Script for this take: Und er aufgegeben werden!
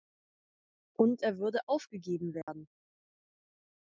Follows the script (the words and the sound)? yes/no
no